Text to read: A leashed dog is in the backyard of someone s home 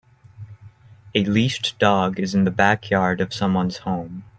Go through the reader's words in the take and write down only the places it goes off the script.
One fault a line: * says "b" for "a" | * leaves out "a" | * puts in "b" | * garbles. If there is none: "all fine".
all fine